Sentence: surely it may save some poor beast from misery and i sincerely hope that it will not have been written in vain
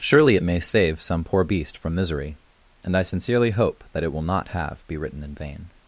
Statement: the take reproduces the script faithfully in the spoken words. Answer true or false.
false